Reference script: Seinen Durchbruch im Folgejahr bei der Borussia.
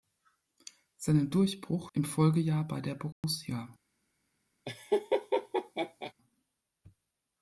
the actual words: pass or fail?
pass